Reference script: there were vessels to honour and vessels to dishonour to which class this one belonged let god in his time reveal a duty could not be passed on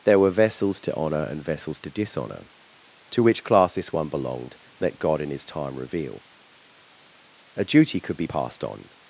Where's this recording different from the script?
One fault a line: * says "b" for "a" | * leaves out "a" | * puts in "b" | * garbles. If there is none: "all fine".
* leaves out "not"